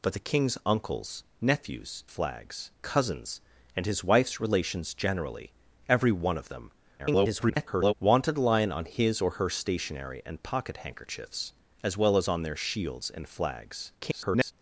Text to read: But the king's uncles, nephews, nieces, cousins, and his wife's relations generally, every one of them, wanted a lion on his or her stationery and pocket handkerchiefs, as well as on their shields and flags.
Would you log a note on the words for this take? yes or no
yes